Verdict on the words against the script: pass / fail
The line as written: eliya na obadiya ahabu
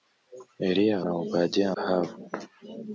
pass